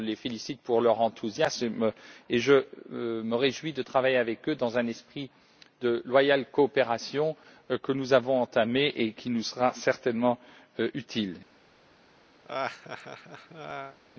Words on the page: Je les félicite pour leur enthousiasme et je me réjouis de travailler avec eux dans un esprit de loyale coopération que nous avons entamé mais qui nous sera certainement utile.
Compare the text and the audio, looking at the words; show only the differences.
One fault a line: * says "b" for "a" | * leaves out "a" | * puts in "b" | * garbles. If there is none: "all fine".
* says "et" for "mais"